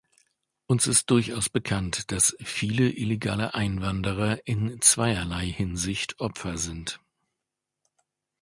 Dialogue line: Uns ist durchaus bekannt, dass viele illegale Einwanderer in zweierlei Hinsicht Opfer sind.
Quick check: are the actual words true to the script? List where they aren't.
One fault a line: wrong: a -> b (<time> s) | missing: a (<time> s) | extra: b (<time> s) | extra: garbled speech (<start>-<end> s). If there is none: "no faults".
no faults